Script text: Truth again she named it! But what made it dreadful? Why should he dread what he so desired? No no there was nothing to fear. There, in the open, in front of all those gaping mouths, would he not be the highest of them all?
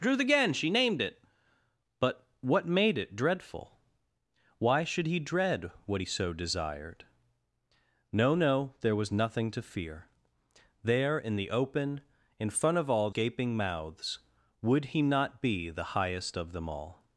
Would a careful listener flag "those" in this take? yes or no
yes